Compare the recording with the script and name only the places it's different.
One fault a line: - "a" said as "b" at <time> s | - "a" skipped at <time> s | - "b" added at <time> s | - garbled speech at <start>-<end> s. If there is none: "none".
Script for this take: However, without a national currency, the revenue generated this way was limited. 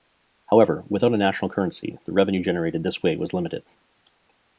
none